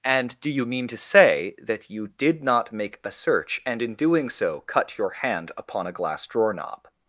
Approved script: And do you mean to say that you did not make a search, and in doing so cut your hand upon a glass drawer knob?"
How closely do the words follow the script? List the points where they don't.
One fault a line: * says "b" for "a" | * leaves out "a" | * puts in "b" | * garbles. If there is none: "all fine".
all fine